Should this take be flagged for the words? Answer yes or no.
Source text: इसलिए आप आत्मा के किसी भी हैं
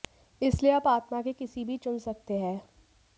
yes